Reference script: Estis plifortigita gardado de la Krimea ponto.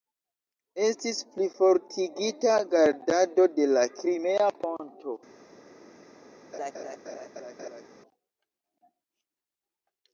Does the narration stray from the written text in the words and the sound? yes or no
yes